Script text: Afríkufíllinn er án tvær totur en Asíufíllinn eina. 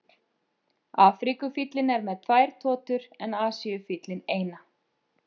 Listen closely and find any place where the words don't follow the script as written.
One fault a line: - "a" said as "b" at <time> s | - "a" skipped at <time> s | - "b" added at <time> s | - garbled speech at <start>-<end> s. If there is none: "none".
- "án" said as "með" at 2.1 s